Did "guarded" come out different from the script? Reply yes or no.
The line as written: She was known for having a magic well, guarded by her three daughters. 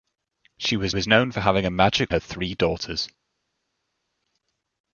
yes